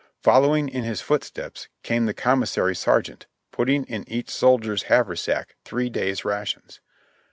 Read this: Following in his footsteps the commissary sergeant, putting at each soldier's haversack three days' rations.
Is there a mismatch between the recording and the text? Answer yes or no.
yes